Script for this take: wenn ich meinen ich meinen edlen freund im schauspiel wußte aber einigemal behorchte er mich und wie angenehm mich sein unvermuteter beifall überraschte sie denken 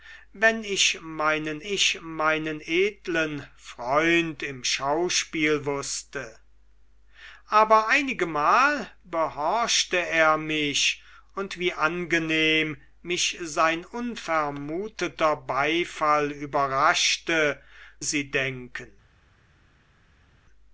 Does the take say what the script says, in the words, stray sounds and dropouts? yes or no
yes